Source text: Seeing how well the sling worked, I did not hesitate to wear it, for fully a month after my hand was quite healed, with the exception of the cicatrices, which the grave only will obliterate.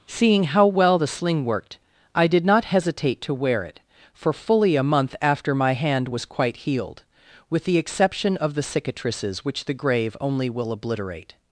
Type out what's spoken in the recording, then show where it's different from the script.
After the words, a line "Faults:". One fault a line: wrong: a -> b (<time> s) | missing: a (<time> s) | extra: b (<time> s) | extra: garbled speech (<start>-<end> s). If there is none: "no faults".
Seeing how well the sling worked, I did not hesitate to wear it, for fully a month after my hand was quite healed, with the exception of the cicatrices, which the grave only will obliterate.
Faults:
no faults